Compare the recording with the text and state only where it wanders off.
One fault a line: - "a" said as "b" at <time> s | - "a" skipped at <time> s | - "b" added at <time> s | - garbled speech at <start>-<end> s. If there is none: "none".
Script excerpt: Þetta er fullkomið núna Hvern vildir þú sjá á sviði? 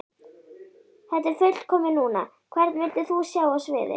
none